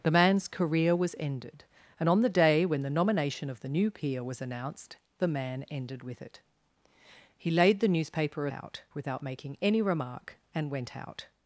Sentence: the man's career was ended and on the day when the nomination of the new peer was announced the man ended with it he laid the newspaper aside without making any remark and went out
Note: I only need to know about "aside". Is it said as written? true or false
false